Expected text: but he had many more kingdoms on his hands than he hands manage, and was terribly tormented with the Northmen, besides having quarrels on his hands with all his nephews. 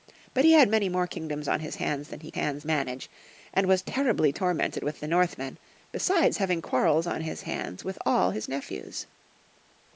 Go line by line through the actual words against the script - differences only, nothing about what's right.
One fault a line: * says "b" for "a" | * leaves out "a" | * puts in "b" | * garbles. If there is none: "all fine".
all fine